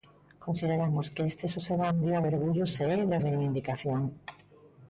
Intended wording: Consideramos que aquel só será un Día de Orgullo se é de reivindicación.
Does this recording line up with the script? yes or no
no